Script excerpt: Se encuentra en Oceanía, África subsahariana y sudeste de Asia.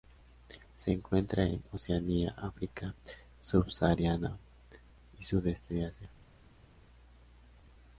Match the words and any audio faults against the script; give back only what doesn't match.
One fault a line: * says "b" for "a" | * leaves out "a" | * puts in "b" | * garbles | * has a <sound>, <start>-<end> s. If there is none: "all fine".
all fine